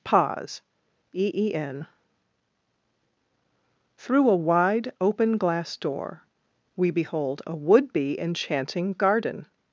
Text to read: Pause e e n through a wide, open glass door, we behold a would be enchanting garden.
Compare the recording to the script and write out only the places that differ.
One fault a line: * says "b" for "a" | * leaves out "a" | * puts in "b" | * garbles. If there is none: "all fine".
all fine